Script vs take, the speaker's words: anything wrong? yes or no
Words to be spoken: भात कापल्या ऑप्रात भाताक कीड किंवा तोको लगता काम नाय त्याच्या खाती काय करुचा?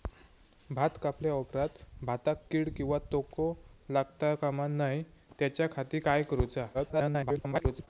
yes